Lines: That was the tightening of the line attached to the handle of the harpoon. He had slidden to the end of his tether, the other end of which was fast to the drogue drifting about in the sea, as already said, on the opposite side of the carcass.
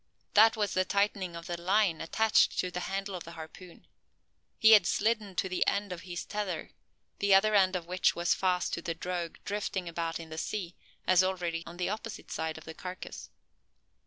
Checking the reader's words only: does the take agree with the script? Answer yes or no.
no